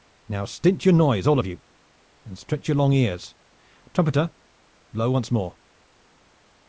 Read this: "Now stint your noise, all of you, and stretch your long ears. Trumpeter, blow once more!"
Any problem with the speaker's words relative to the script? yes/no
no